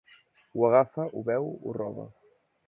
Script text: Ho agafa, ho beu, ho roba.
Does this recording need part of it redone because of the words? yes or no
no